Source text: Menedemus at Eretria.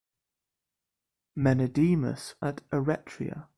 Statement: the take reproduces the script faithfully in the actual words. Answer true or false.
true